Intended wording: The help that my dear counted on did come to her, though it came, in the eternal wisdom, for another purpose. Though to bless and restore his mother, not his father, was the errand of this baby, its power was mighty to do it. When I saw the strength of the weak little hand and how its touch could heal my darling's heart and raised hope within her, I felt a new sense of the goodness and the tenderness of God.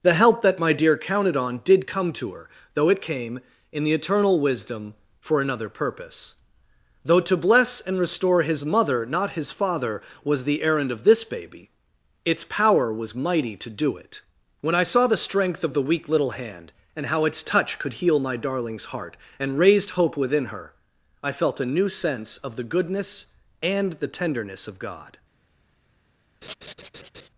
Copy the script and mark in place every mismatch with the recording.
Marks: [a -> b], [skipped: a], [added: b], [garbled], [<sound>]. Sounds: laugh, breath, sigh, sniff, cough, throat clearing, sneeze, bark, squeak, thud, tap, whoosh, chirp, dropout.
The help that my dear counted on did come to her, though it came, in the eternal wisdom, for another purpose. Though to bless and restore his mother, not his father, was the errand of this baby, its power was mighty to do it. When I saw the strength of the weak little hand and how its touch could heal my darling's heart and raised hope within her, I felt a new sense of the goodness and the tenderness of God. [laugh]